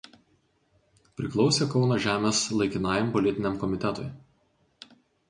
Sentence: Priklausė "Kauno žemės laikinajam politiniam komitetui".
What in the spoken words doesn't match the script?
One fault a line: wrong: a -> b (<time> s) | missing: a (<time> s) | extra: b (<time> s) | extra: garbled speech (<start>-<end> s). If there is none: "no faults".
no faults